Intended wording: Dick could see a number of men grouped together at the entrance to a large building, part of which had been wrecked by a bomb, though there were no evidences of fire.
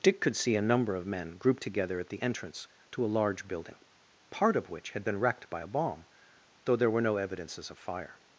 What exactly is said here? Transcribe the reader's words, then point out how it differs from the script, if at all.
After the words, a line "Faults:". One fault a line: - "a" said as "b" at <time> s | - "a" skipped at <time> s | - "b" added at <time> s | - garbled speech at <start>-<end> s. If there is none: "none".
Dick could see a number of men grouped together at the entrance to a large building, part of which had been wrecked by a bomb, though there were no evidences of fire.
Faults:
none